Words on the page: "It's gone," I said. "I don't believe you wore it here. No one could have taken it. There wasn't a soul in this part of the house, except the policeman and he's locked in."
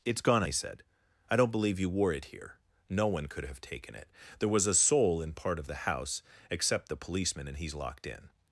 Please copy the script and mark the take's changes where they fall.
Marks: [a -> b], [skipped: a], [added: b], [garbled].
"It's gone," I said. "I don't believe you wore it here. No one could have taken it. There [wasn't -> was] a soul in [skipped: this] part of the house, except the policeman and he's locked in."